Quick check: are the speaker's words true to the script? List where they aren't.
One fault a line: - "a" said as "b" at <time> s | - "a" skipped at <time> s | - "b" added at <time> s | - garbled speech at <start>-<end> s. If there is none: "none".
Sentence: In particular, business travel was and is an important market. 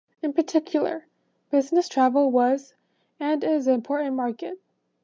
none